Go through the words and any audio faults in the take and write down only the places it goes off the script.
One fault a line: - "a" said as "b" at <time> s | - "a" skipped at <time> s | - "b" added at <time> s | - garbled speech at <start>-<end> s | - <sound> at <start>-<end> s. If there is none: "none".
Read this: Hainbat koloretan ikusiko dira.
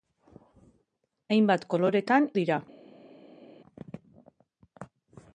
- "ikusiko" skipped at 2.2 s